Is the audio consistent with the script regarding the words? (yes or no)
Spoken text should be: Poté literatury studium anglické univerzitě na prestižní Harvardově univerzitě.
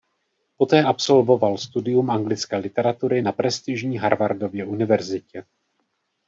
no